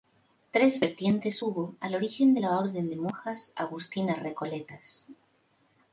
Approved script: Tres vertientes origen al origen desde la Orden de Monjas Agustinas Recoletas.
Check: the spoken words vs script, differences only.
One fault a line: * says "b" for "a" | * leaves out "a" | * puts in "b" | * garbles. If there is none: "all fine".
* says "hubo" for "origen"
* says "de" for "desde"